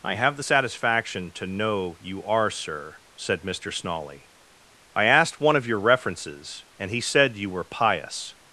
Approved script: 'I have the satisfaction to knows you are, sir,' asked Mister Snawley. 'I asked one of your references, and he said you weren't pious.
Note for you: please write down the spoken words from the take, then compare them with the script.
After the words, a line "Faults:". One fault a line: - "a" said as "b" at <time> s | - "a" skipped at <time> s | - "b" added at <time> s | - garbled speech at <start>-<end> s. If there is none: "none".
'I have the satisfaction to know you are, sir,' said Mister Snawley. 'I asked one of your references, and he said you were pious.
Faults:
- "knows" said as "know" at 1.5 s
- "asked" said as "said" at 3.2 s
- "weren't" said as "were" at 7.5 s